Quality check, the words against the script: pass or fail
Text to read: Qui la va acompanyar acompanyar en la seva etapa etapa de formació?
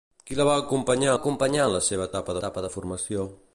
pass